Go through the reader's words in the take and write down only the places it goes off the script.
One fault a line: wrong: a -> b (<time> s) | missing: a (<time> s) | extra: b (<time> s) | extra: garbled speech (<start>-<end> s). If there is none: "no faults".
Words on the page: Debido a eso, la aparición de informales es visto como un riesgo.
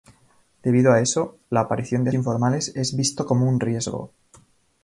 no faults